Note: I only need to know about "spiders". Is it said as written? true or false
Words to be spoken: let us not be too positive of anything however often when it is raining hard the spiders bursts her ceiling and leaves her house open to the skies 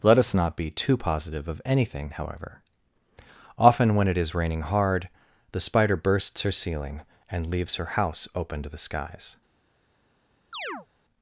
false